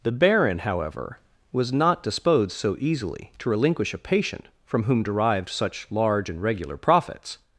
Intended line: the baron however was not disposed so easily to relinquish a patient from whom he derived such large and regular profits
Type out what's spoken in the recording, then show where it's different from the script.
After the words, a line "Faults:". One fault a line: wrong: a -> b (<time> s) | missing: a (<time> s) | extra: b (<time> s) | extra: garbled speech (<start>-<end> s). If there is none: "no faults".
the baron however was not disposed so easily to relinquish a patient from whom derived such large and regular profits
Faults:
missing: he (5.0 s)